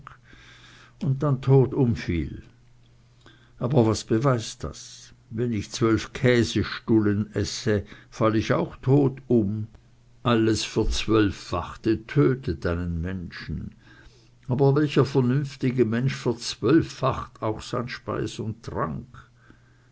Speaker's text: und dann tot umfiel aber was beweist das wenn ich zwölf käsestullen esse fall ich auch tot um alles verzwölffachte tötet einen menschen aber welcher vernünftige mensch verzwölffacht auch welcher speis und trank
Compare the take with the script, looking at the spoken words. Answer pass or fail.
fail